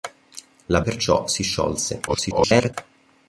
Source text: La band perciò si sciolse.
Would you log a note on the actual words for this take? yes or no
yes